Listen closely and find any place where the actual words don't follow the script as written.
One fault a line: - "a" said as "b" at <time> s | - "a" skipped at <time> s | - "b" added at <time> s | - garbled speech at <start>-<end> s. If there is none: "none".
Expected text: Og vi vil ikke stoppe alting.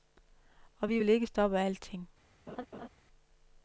none